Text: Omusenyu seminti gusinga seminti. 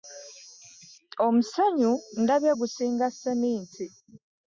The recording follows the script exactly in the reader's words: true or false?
false